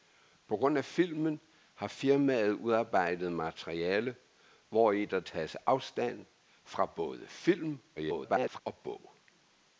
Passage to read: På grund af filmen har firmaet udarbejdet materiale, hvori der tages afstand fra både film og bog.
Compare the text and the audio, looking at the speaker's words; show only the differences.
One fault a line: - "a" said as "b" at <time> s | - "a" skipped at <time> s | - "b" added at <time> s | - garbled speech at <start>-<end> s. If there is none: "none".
- garbled speech at 8.0-8.6 s